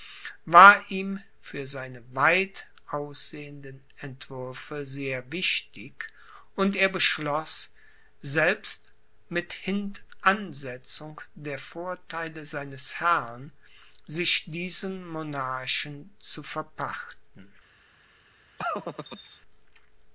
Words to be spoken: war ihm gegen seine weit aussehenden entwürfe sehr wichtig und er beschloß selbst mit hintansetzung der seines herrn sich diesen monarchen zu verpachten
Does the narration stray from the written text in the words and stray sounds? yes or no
yes